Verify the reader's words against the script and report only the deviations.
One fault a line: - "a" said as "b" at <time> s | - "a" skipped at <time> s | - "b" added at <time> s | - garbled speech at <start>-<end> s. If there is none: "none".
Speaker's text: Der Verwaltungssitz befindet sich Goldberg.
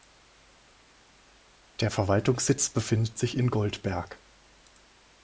- "in" added at 3.4 s